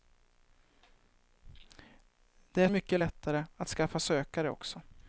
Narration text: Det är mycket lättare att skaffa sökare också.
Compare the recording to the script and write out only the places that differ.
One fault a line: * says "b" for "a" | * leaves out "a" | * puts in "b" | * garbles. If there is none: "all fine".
all fine